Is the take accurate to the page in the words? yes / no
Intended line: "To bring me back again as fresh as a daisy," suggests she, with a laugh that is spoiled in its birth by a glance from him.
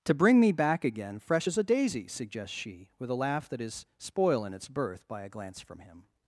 no